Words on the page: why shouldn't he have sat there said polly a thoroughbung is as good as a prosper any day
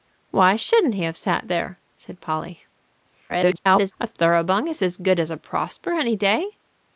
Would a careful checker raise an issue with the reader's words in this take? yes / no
yes